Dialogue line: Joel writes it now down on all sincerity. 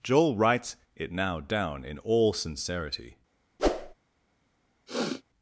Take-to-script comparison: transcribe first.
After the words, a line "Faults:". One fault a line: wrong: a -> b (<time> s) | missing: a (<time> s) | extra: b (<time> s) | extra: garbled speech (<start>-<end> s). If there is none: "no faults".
Joel writes it now down in all sincerity.
Faults:
wrong: on -> in (1.9 s)